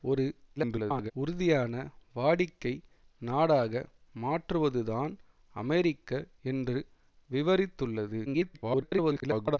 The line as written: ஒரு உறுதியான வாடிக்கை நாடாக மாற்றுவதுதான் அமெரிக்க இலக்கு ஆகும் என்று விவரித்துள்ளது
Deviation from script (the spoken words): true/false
true